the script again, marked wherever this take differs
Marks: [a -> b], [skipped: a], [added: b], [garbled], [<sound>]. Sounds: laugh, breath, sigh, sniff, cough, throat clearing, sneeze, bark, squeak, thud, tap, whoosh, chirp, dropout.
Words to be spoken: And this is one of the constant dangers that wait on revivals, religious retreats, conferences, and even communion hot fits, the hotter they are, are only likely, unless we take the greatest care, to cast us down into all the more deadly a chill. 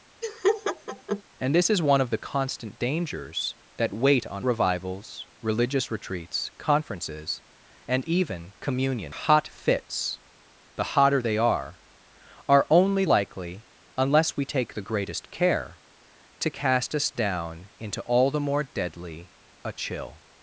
[laugh] And this is one of the constant dangers that wait on revivals, religious retreats, conferences, and even communion hot fits, the hotter they are, are only likely, unless we take the greatest care, to cast us down into all the more deadly a chill.